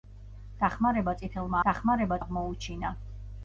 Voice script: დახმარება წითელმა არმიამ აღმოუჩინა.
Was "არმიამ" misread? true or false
true